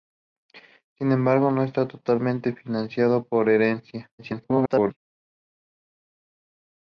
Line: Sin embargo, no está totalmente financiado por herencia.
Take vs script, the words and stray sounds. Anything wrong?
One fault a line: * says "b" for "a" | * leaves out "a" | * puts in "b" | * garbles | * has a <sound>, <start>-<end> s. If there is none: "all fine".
* garbles